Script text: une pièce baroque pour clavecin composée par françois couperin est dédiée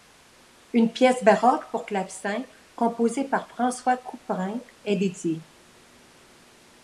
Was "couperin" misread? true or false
false